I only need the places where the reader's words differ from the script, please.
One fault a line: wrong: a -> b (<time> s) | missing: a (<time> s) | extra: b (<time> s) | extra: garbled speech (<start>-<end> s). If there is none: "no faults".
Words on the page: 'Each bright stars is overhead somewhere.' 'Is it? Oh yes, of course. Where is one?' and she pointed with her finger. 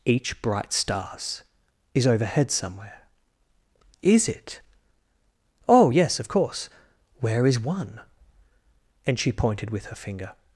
no faults